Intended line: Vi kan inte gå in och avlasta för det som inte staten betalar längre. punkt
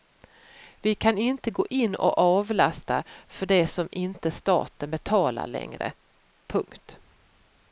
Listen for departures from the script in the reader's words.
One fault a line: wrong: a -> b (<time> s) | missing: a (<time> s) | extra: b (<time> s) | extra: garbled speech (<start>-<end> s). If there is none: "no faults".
no faults